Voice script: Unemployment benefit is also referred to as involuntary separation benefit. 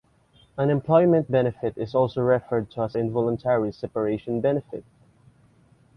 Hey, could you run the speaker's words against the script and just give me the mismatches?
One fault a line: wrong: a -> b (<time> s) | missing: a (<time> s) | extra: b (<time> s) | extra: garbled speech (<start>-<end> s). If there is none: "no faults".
no faults